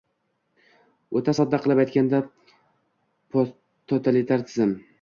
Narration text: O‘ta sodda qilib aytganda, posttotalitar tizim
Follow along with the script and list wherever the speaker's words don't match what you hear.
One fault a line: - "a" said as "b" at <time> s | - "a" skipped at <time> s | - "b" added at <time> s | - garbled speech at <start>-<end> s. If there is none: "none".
none